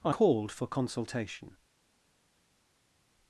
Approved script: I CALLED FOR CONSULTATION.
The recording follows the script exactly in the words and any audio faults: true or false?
true